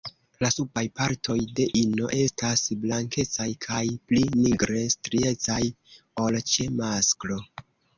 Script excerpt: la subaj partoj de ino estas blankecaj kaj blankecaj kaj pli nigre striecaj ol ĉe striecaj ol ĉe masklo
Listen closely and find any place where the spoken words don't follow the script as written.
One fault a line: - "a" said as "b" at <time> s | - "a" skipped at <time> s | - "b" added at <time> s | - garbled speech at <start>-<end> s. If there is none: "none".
- "blankecaj kaj" skipped at 3.8 s
- "striecaj ol ĉe" skipped at 6.7 s